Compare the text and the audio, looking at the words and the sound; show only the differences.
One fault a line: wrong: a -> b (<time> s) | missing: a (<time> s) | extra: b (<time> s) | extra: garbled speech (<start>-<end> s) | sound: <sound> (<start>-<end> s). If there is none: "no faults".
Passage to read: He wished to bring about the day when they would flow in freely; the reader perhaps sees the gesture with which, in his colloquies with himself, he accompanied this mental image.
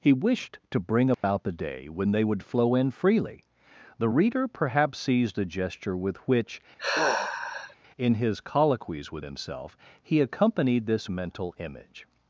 sound: dropout (1.1-1.2 s)
sound: sigh (6.8-7.8 s)